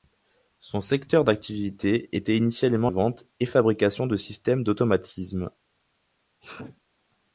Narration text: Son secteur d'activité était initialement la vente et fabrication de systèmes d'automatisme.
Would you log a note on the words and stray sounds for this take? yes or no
yes